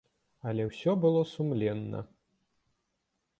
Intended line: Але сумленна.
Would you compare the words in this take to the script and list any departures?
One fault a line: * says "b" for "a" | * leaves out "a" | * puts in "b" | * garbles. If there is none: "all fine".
* puts in "ўсё было"